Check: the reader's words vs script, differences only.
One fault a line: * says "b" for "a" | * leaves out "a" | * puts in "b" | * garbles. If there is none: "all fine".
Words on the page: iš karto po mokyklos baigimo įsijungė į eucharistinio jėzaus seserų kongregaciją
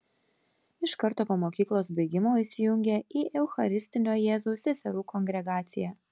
all fine